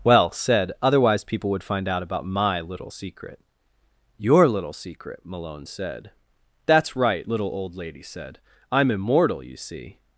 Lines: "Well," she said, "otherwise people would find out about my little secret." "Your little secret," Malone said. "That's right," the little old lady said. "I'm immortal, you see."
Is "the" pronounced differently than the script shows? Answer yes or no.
yes